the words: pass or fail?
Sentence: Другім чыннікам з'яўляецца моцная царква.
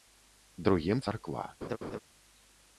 fail